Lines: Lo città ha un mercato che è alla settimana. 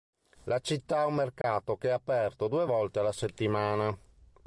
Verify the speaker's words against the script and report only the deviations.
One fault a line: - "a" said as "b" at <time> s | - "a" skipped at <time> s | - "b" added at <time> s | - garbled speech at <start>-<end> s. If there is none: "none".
- "Lo" said as "La" at 0.5 s
- "aperto due volte" added at 1.9 s